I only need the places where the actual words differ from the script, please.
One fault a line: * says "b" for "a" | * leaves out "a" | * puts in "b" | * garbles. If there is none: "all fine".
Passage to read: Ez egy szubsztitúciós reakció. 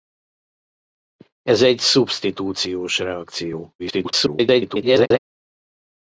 * garbles